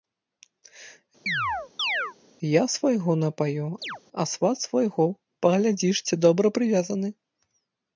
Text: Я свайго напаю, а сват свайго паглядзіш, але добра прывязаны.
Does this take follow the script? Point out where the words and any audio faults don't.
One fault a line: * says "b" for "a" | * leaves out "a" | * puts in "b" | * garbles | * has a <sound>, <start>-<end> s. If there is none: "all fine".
* has a chirp, 1.3-2.1 s
* has a chirp, 3.8-4.0 s
* says "ці" for "але"